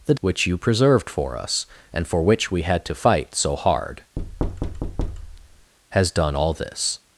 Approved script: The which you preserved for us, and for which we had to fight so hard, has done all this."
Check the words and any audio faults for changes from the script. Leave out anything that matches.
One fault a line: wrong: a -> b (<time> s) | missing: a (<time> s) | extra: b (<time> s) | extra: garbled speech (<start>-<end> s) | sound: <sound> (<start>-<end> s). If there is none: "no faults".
sound: thud (4.2-5.7 s)